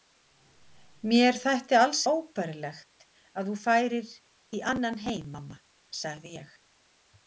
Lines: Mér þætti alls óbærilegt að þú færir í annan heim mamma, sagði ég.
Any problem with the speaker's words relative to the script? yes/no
no